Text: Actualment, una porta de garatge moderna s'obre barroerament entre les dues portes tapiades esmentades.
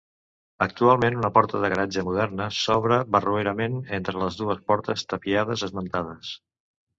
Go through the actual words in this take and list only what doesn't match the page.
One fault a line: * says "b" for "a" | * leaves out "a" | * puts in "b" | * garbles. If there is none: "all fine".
all fine